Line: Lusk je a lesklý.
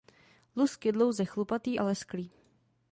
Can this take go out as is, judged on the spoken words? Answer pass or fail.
fail